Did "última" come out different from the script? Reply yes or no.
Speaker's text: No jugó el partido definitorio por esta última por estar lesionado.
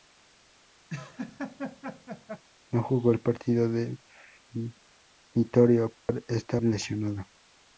yes